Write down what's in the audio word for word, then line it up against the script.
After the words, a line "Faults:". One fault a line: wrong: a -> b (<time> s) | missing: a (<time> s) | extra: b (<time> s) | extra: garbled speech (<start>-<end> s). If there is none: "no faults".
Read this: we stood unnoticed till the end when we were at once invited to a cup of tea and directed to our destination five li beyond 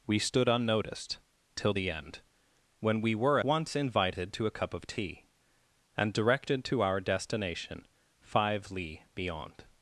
we stood unnoticed till the end when we were once invited to a cup of tea and directed to our destination five li beyond
Faults:
missing: at (3.4 s)